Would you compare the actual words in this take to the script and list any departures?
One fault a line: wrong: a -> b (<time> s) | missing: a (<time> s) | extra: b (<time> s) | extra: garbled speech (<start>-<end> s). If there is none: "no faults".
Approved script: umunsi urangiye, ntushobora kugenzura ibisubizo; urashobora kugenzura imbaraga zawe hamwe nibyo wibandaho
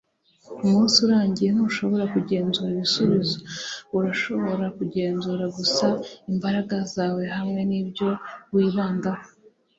extra: gusa (5.6 s)